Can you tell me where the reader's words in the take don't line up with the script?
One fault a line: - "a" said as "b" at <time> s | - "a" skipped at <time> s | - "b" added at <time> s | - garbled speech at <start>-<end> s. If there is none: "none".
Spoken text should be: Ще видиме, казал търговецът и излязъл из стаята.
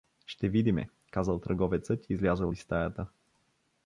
none